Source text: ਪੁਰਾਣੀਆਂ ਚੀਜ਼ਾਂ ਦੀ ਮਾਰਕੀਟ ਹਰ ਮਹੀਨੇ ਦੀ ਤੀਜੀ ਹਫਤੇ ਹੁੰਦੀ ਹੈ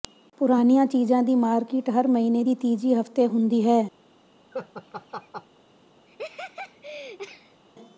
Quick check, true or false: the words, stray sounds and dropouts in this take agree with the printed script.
false